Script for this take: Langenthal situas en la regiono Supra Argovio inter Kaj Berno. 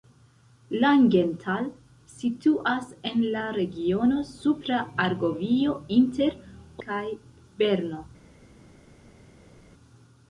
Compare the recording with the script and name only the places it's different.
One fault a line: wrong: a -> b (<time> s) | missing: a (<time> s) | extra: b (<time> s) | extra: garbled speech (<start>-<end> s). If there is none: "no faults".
no faults